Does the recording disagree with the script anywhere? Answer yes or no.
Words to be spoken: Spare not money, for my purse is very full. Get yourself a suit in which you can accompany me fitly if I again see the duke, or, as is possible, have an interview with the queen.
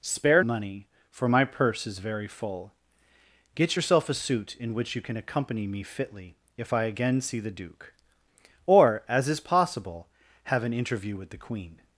yes